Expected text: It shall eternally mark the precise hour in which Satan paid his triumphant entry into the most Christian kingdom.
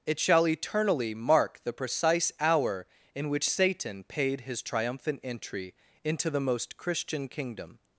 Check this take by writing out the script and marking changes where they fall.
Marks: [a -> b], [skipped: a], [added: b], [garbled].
It shall eternally mark the precise hour in which Satan paid his triumphant entry into the most Christian kingdom.